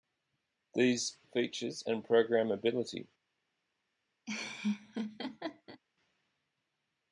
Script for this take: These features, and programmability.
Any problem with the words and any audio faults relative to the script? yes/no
yes